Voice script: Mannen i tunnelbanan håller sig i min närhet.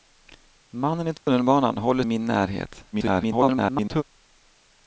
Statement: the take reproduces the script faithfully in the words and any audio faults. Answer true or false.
false